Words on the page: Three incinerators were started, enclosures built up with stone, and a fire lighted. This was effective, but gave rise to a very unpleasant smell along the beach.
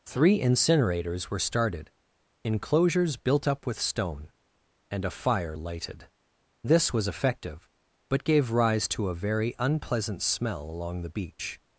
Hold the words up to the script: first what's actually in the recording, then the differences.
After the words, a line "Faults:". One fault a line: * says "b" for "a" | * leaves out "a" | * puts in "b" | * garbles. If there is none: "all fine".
Three incinerators were started, enclosures built up with stone, and a fire lighted. This was effective, but gave rise to a very unpleasant smell along the beach.
Faults:
all fine